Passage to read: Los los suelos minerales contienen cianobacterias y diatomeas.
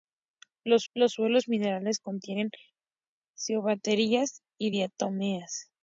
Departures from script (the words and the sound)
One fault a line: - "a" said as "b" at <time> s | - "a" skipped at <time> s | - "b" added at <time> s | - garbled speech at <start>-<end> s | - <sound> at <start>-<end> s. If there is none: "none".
none